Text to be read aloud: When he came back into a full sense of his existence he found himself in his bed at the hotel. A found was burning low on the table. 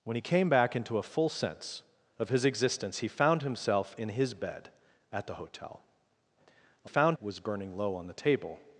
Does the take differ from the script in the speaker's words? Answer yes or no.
no